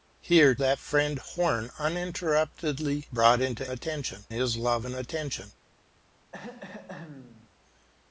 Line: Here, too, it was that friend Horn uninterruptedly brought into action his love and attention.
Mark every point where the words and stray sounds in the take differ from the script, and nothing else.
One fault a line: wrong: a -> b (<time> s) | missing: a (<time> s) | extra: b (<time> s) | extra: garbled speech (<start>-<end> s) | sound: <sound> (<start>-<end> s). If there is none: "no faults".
missing: too it was (0.6 s)
wrong: action -> attention (3.7 s)
sound: throat clearing (6.3-7.5 s)